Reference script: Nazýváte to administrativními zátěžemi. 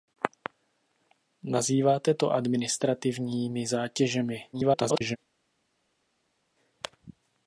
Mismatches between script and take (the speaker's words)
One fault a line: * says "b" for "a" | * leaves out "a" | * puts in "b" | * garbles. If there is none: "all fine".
* garbles